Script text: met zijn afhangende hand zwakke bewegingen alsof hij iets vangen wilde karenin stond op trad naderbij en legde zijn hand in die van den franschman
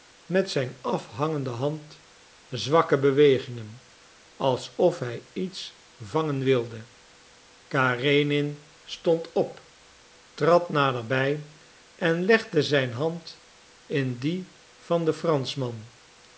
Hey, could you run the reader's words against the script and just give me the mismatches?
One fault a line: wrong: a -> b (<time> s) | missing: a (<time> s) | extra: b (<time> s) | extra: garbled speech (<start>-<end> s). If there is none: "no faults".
no faults